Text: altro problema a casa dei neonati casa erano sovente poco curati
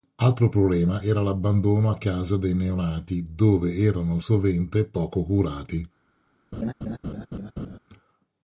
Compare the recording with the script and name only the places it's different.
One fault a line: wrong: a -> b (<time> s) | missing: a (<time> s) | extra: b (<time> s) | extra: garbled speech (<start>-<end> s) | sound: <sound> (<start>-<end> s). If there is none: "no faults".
extra: era l'abbandono (1.0 s)
wrong: casa -> dove (3.3 s)
sound: laugh (6.5-7.8 s)